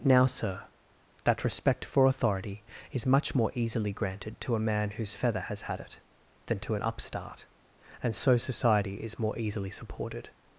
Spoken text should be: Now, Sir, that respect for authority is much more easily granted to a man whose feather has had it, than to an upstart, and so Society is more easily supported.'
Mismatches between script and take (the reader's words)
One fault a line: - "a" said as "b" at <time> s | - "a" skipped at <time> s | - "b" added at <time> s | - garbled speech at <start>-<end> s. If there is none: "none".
none